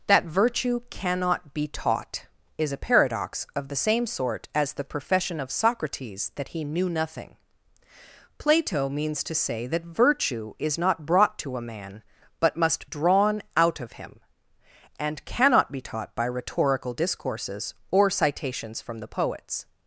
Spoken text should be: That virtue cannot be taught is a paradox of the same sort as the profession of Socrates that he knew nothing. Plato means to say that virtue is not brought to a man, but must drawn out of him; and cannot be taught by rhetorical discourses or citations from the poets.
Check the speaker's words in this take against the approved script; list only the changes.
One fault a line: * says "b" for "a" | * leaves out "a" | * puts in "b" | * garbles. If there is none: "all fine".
all fine